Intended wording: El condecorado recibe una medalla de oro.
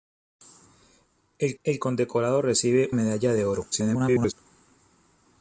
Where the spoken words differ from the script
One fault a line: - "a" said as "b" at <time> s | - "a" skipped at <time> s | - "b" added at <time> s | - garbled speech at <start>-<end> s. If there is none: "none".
- "el" added at 1.6 s
- "una" skipped at 2.9 s
- garbled speech at 3.7-4.3 s